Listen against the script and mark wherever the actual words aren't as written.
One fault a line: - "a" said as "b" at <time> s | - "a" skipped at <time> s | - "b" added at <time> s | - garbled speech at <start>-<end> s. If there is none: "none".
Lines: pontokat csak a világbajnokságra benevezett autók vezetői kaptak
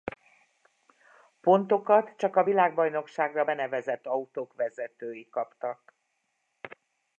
none